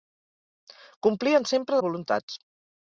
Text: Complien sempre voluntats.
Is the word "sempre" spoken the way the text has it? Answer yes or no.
yes